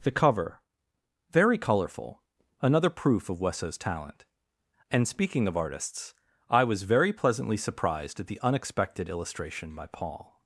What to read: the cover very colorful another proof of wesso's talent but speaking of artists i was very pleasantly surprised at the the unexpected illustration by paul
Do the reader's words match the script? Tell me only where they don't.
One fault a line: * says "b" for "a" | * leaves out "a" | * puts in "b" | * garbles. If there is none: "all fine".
* says "and" for "but"
* leaves out "the"